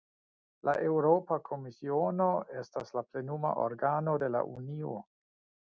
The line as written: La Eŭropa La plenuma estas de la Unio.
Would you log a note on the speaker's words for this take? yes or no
yes